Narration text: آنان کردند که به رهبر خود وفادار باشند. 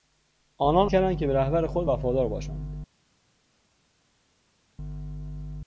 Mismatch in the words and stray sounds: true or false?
false